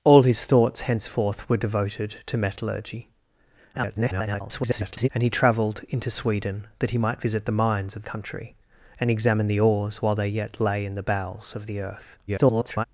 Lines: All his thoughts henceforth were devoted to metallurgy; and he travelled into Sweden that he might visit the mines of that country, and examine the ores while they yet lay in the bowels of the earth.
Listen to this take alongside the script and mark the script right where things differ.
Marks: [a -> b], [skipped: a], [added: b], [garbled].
All his thoughts henceforth were devoted to metallurgy; [garbled] and he travelled into Sweden that he might visit the mines of [skipped: that] country, and examine the ores while they yet lay in the bowels of the earth. [garbled]